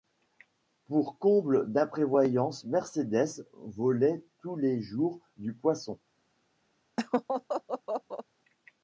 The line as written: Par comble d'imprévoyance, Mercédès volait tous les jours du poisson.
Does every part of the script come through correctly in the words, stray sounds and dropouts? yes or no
no